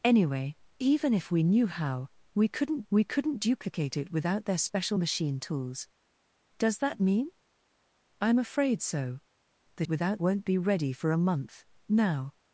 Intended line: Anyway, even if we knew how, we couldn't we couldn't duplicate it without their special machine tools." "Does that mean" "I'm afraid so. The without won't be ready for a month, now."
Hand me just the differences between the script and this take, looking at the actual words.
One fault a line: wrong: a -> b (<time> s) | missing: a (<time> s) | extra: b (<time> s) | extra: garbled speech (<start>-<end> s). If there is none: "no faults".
no faults